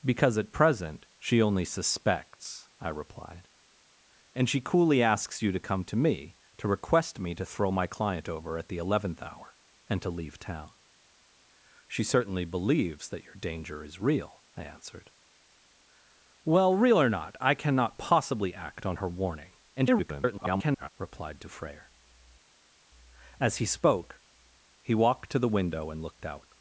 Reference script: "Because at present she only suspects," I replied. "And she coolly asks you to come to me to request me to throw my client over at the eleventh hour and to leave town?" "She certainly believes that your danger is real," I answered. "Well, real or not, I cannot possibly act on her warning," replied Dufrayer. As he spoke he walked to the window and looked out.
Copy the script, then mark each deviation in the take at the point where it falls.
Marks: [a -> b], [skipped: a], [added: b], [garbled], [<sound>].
"Because at present she only suspects," I replied. "And she coolly asks you to come to me to request me to throw my client over at the eleventh hour and to leave town?" "She certainly believes that your danger is real," I answered. "Well, real or not, I cannot possibly act on her warning," [garbled] replied Dufrayer. As he spoke he walked to the window and looked out.